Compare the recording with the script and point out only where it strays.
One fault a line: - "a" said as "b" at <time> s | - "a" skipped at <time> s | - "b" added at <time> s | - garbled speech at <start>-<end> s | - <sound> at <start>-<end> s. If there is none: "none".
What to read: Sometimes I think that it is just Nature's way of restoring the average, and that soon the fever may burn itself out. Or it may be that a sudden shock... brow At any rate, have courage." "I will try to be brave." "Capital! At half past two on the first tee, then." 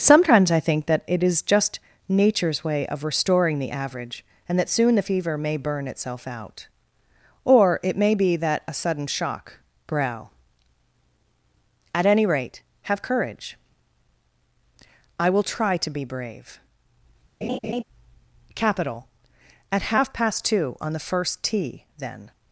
- laugh at 17.4-17.8 s